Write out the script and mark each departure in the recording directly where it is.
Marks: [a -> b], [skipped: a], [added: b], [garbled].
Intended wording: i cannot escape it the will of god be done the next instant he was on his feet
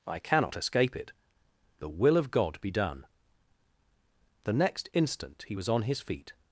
i cannot escape it the will of god be done the next instant he was on his feet